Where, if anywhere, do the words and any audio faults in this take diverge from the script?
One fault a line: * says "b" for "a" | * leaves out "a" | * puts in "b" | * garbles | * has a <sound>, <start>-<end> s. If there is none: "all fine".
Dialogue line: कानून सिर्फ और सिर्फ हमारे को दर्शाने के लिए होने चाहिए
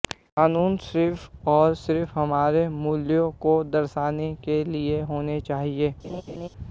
* puts in "मूल्यों"
* has a laugh, 6.0-6.5 s